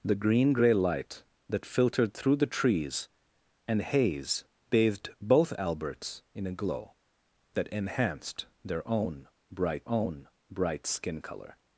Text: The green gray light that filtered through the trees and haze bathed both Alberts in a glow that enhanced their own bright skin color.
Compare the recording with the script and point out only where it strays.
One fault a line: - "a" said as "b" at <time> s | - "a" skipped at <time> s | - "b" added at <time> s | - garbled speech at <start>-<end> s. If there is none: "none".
- "own bright" added at 9.9 s